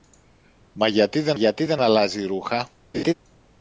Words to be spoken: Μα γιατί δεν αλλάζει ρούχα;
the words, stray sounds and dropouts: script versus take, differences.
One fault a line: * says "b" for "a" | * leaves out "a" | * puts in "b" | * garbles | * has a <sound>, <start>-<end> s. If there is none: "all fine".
* puts in "γιατί δεν"
* has a laugh, 2.9-3.1 s